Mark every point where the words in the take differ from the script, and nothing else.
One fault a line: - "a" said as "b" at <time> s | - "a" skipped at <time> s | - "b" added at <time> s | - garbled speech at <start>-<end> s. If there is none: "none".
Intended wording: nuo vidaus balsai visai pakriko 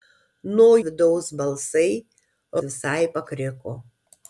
none